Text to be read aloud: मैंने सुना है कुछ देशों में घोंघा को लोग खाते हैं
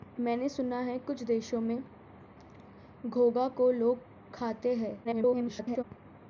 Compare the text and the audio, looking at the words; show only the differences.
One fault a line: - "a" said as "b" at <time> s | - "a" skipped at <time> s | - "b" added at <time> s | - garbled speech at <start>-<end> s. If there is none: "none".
- garbled speech at 5.0-5.8 s